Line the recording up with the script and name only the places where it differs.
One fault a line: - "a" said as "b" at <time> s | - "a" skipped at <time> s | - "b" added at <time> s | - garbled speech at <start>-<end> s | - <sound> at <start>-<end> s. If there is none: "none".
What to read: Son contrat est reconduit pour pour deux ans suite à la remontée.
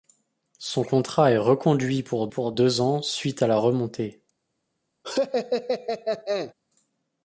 - laugh at 5.0-6.5 s